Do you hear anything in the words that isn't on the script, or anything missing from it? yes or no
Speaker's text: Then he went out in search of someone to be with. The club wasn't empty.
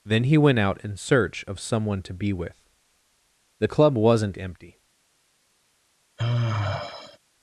no